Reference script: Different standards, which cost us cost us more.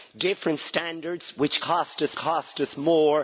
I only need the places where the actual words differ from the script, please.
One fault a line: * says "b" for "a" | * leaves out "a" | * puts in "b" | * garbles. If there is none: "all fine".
all fine